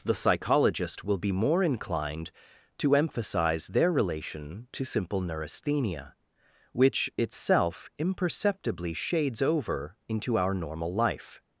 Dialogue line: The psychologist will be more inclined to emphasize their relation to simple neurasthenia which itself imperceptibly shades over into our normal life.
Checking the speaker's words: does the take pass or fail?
pass